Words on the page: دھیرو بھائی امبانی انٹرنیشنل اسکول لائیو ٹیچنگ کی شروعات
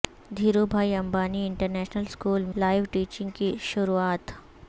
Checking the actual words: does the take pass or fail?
pass